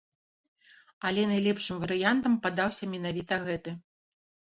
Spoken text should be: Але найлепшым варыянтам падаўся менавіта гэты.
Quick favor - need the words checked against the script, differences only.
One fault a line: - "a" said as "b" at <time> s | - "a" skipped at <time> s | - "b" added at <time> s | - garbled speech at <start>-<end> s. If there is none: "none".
none